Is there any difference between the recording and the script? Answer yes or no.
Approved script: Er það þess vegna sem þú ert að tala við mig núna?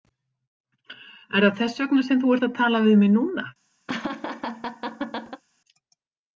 no